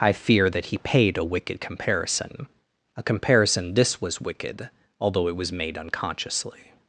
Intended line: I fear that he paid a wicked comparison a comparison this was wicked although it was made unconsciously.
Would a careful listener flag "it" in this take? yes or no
no